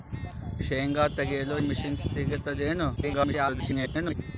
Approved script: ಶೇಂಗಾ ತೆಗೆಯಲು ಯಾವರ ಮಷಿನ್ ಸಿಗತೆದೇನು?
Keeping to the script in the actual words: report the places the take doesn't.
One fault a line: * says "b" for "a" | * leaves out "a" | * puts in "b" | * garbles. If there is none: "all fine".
* leaves out "ಯಾವರ"
* garbles